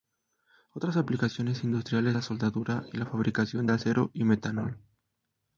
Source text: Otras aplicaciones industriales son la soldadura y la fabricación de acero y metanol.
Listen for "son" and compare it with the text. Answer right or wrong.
wrong